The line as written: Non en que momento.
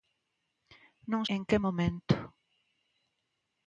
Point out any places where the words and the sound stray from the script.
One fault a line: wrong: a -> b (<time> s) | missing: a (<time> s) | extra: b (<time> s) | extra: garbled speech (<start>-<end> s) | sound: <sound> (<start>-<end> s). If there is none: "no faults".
no faults